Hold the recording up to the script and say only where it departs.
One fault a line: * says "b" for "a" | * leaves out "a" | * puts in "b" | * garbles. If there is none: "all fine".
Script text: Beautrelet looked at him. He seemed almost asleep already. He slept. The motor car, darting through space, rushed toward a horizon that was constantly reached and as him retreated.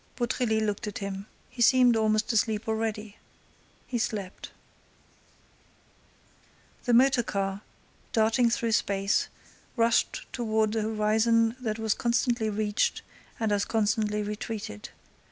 * says "constantly" for "him"